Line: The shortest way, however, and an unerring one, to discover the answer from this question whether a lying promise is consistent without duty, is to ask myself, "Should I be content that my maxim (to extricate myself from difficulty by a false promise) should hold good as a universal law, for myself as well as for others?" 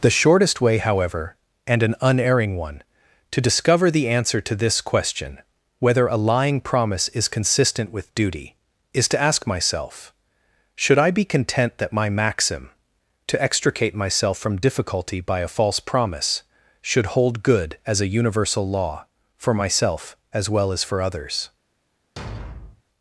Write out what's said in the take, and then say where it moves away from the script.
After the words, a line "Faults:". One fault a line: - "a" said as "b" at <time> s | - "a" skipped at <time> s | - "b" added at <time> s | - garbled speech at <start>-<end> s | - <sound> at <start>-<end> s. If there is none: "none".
The shortest way, however, and an unerring one, to discover the answer to this question whether a lying promise is consistent with duty, is to ask myself, "Should I be content that my maxim (to extricate myself from difficulty by a false promise) should hold good as a universal law, for myself as well as for others?"
Faults:
- "from" said as "to" at 4.4 s
- "without" said as "with" at 7.9 s
- thud at 22.2-22.8 s